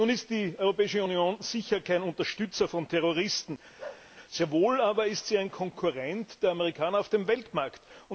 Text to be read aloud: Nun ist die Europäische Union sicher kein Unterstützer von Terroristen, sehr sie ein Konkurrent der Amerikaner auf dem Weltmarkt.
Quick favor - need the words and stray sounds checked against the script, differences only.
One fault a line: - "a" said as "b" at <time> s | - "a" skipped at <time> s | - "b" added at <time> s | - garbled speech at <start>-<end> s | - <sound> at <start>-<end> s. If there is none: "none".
- bark at 3.8-4.1 s
- "wohl aber ist" added at 4.5 s